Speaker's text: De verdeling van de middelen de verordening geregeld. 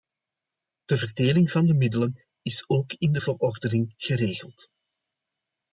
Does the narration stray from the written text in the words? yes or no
yes